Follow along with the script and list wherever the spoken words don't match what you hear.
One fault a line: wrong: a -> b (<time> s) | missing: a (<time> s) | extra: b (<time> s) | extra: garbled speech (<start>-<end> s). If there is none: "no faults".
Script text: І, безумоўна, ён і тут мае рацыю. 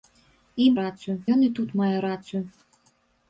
wrong: безумоўна -> рацыю (0.8 s)